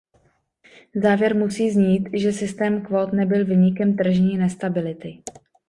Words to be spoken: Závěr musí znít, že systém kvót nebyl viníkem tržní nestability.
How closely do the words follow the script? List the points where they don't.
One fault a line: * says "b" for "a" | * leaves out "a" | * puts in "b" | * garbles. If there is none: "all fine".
all fine